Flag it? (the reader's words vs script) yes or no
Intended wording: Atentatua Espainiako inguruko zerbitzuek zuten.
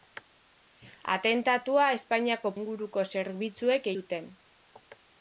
no